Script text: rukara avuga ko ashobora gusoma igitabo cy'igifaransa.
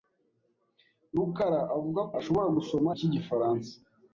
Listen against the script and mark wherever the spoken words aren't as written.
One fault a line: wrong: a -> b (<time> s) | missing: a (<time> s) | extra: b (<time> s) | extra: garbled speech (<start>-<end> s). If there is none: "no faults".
missing: ko (2.0 s)
missing: igitabo (2.9 s)